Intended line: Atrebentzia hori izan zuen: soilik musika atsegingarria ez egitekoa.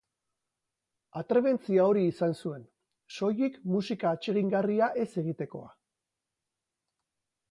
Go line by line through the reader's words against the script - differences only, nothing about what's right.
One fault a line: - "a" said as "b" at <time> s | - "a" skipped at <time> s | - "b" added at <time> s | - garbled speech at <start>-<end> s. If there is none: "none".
none